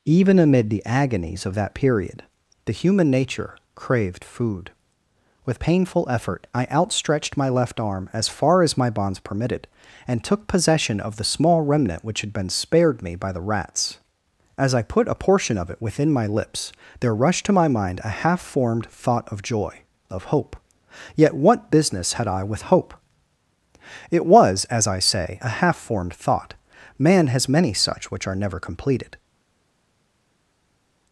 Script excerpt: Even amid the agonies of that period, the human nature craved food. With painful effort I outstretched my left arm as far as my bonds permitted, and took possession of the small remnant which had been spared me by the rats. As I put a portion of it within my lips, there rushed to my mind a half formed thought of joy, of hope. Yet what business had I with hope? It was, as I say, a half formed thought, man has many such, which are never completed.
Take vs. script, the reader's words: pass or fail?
pass